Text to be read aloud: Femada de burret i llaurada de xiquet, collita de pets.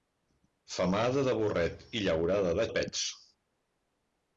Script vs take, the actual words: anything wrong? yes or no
yes